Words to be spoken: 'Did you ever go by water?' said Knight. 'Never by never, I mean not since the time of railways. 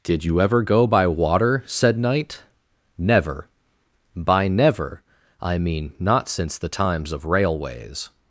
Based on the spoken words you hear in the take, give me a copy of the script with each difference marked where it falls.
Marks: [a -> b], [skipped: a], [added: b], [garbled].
'Did you ever go by water?' said Knight. 'Never by never, I mean not since the [time -> times] of railways.